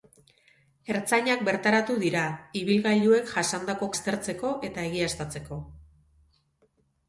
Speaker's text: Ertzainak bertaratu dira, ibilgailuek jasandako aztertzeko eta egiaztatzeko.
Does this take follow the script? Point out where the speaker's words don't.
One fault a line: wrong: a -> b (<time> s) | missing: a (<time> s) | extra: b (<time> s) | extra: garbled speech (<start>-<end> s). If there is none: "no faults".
no faults